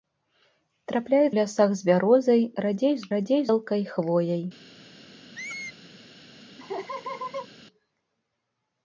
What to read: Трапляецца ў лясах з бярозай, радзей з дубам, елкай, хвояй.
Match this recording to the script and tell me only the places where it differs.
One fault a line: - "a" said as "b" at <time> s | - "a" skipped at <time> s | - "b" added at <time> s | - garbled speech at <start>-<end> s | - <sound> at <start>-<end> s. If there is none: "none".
- "ў" skipped at 1.3 s
- "дубам" said as "радзей" at 3.1 s
- squeak at 5.3-5.8 s
- laugh at 6.6-7.5 s